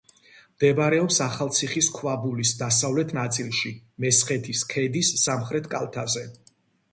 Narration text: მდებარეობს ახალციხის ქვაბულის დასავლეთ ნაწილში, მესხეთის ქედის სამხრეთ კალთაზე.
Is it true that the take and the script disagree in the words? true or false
false